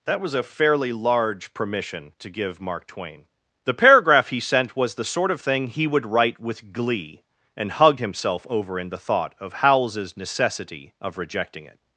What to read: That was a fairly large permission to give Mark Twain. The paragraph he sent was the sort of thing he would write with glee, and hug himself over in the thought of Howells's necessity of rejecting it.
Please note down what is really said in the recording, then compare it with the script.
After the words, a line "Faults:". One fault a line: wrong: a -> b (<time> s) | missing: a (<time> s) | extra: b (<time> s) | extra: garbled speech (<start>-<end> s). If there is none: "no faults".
That was a fairly large permission to give Mark Twain. The paragraph he sent was the sort of thing he would write with glee, and hug himself over in the thought of Howells's necessity of rejecting it.
Faults:
no faults